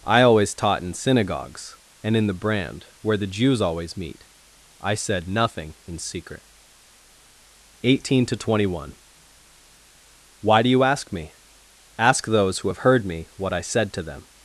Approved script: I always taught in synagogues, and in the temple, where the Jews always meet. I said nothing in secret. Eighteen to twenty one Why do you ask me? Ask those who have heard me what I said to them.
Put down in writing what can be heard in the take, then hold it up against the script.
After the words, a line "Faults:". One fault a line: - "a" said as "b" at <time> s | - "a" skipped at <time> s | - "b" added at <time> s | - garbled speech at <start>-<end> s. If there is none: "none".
I always taught in synagogues, and in the brand, where the Jews always meet. I said nothing in secret. Eighteen to twenty one Why do you ask me? Ask those who have heard me what I said to them.
Faults:
- "temple" said as "brand" at 2.3 s